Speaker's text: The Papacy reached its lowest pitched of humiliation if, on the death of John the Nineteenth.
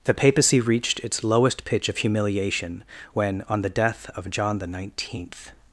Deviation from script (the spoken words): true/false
true